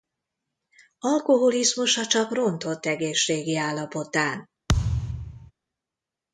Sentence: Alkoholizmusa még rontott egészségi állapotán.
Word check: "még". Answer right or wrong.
wrong